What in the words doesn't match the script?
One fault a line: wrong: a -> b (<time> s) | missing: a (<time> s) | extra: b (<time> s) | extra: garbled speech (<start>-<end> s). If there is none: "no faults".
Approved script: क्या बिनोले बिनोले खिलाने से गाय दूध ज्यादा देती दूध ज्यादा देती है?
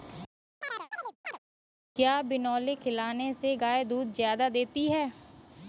missing: बिनोले (2.7 s)
missing: दूध ज्यादा देती (4.9 s)